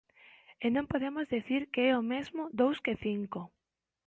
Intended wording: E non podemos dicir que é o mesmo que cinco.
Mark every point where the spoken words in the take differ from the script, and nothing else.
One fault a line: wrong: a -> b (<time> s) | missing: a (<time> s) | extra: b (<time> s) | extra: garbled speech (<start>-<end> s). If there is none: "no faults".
extra: dous (2.6 s)